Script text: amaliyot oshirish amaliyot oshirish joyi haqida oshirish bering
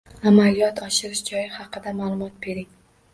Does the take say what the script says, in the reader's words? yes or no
no